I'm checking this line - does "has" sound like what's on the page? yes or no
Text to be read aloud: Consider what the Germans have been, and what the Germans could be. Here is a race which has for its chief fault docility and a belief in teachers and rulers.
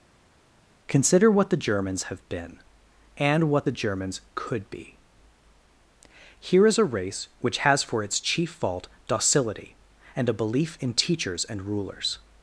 yes